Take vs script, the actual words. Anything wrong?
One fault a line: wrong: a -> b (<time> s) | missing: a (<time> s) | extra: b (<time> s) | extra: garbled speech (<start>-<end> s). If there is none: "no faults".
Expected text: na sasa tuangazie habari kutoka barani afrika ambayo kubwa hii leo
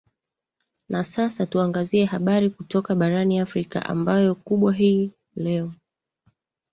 no faults